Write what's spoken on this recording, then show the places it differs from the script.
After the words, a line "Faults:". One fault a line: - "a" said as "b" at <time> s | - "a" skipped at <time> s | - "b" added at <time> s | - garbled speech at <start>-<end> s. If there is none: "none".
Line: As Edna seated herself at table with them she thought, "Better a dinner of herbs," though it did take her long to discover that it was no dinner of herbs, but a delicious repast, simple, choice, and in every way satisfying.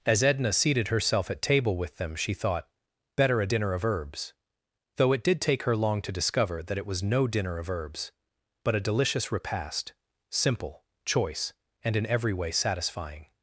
As Edna seated herself at table with them she thought, "Better a dinner of herbs," though it did take her long to discover that it was no dinner of herbs, but a delicious repast, simple, choice, and in every way satisfying.
Faults:
none